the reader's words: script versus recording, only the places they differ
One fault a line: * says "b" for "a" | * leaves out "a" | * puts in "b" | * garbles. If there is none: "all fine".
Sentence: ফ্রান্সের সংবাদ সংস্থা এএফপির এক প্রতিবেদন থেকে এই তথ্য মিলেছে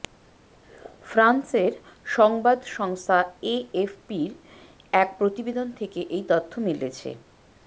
all fine